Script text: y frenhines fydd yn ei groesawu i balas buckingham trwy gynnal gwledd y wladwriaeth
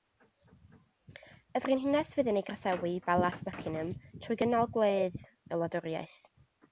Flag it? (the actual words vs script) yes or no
no